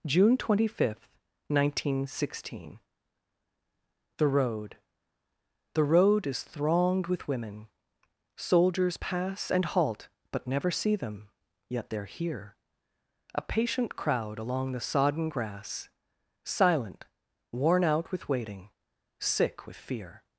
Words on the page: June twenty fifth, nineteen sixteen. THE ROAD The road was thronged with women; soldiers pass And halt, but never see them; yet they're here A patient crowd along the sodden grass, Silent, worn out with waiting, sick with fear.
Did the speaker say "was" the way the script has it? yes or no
no